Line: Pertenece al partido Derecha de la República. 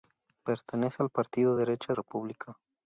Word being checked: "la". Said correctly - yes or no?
no